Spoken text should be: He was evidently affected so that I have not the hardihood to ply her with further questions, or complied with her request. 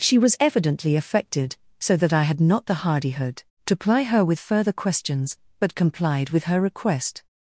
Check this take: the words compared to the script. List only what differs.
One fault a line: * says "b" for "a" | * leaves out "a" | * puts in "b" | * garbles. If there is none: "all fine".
* says "She" for "He"
* says "had" for "have"
* says "but" for "or"